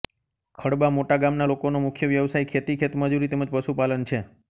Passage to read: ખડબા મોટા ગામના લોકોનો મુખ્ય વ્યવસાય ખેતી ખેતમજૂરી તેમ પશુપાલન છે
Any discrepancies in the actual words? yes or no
yes